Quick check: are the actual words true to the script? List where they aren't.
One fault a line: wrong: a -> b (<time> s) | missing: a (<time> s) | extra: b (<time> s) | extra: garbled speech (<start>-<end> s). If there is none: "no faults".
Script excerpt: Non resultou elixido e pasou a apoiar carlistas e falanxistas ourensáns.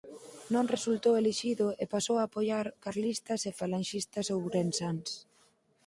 no faults